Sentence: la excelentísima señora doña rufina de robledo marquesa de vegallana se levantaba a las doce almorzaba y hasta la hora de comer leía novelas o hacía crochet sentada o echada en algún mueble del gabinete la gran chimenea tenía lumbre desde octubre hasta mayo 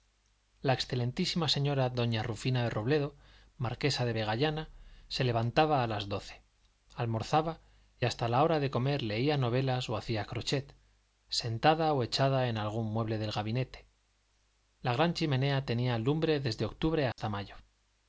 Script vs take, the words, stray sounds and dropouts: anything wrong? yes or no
yes